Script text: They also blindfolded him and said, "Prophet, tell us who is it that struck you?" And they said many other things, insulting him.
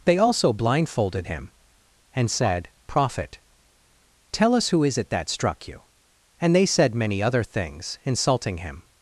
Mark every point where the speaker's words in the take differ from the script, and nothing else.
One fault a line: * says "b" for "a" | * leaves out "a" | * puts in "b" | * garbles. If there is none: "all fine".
all fine